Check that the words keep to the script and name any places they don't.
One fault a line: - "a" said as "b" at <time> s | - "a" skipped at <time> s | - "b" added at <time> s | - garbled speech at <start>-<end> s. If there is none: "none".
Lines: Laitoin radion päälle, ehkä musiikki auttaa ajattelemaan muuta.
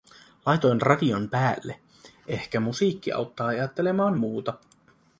none